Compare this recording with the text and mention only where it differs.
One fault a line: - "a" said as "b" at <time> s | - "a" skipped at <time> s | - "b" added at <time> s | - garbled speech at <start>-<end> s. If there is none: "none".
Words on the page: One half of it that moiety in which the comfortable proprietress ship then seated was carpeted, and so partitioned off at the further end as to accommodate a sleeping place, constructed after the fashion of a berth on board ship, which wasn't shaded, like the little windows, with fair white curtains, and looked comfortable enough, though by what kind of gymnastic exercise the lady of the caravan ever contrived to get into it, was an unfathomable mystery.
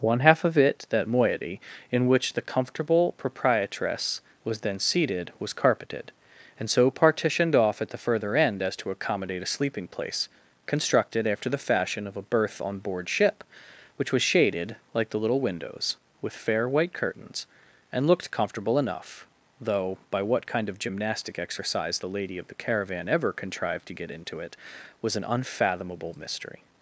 - "ship" said as "was" at 4.4 s
- "wasn't" said as "was" at 14.1 s